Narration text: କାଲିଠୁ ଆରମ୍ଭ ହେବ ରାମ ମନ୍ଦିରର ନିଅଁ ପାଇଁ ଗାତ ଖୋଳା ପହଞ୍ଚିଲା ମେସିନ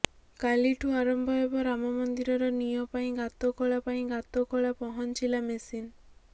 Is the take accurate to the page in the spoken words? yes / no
no